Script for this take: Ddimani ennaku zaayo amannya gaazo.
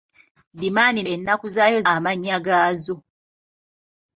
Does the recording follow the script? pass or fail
pass